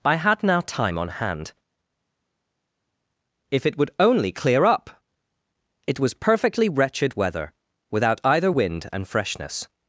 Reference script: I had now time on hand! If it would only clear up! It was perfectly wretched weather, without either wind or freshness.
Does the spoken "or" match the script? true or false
false